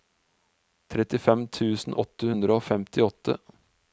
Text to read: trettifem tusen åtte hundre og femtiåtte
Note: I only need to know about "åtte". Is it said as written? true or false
true